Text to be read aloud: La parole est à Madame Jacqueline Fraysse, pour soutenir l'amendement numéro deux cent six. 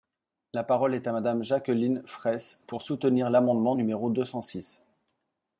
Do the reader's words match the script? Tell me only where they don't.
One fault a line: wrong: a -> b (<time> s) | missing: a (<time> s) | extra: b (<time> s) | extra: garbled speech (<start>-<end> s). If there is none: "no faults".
no faults